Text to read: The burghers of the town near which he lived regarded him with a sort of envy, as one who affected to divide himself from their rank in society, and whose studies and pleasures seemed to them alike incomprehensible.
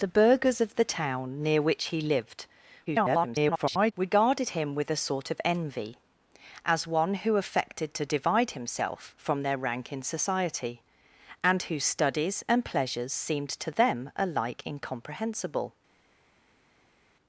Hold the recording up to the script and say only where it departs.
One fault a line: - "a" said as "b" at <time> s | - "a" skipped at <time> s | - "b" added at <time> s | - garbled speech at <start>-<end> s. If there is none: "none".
- garbled speech at 2.9-3.9 s